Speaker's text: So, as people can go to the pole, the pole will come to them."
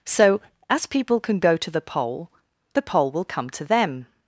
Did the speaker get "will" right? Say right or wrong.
right